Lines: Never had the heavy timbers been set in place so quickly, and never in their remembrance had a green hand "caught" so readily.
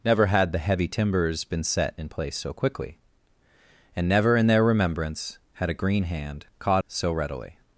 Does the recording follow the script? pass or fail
pass